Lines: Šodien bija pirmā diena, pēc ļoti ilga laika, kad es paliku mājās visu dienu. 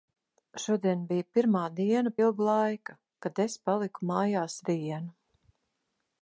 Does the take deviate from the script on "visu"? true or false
true